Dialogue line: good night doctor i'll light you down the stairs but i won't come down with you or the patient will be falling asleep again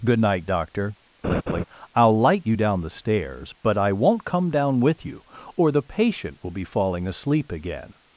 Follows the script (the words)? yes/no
yes